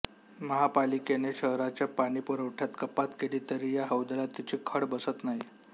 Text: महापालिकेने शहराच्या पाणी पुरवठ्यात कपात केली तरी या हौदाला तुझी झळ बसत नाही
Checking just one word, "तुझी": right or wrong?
wrong